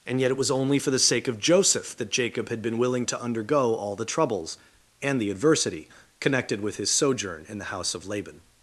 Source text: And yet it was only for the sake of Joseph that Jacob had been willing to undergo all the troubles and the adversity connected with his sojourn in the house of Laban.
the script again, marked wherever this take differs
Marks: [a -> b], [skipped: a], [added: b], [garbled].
And yet it was only for the sake of Joseph that Jacob had been willing to undergo all the troubles and the adversity connected with his sojourn in the house of Laban.